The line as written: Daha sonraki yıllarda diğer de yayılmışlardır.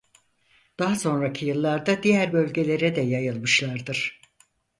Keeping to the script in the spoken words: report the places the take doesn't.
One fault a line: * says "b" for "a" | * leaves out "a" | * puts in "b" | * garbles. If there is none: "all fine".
* puts in "bölgelere"